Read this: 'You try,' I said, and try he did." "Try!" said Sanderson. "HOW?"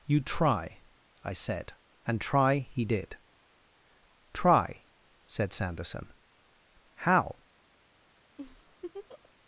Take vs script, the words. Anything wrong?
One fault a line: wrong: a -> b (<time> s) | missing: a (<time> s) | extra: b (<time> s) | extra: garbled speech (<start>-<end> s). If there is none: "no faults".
no faults